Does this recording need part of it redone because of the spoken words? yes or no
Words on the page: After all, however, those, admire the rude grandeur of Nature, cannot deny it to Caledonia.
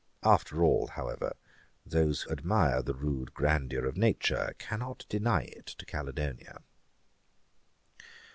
no